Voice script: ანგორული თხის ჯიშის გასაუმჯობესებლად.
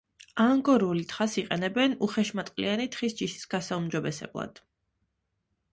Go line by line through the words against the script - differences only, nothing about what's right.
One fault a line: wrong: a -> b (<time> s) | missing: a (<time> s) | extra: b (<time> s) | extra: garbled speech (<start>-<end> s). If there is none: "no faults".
extra: თხას იყენებენ უხეშმატყლიანი (1.1 s)